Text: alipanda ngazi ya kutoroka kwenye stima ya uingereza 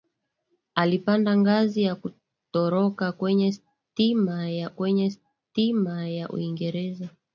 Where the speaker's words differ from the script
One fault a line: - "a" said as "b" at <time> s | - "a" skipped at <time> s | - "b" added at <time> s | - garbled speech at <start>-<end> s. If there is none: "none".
- "kwenye stima ya" added at 4.7 s